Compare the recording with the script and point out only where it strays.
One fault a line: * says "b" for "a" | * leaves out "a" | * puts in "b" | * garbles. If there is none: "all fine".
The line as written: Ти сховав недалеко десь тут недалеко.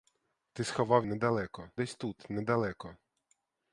all fine